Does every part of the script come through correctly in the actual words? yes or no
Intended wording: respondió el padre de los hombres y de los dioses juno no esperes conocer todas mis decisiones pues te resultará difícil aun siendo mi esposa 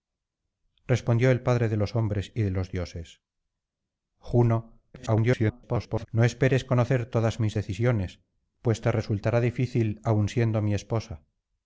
no